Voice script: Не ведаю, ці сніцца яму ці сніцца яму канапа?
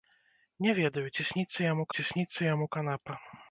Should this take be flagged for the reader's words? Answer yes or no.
no